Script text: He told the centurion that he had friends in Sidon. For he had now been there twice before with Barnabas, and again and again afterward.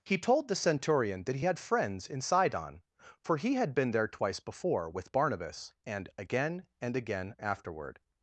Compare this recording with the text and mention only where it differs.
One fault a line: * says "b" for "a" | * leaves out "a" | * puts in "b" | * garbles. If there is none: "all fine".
* leaves out "now"